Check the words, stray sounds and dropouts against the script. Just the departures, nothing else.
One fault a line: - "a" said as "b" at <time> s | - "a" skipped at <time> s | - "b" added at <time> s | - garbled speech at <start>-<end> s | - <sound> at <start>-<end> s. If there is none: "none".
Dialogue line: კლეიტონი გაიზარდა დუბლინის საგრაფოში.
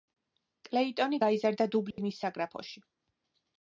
- dropout at 1.9-2.0 s